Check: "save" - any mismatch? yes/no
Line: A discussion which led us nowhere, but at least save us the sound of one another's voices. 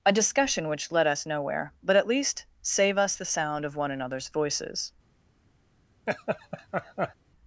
no